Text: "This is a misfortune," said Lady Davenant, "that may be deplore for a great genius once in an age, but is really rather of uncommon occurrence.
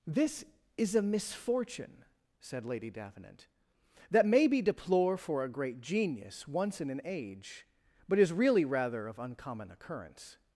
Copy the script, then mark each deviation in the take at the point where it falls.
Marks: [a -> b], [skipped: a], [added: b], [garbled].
"This is a misfortune," said Lady Davenant, "that may be deplore for a great genius once in an age, but is really rather of uncommon occurrence.